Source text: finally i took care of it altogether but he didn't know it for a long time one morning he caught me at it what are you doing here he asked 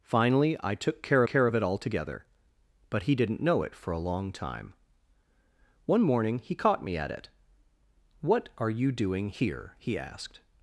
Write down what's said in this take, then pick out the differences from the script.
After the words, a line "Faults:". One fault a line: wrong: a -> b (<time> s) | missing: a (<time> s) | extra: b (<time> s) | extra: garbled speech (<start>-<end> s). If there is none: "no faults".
finally i took care care of it altogether but he didn't know it for a long time one morning he caught me at it what are you doing here he asked
Faults:
extra: care (1.2 s)